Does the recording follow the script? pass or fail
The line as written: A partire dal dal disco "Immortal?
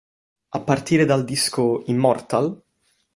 fail